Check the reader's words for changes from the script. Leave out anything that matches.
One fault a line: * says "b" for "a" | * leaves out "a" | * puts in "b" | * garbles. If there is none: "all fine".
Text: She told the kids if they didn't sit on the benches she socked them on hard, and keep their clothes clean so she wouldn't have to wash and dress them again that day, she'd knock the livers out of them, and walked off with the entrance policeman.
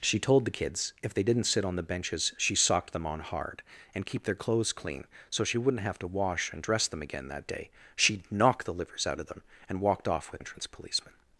* leaves out "the"